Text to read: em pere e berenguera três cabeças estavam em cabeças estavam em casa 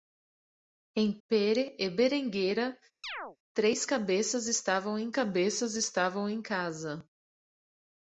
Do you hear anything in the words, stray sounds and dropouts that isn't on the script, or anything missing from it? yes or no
yes